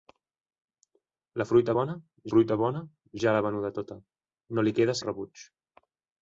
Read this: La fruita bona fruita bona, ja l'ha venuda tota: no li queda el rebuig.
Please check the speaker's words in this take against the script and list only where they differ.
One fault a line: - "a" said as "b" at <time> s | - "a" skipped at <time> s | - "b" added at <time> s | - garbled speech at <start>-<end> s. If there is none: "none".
none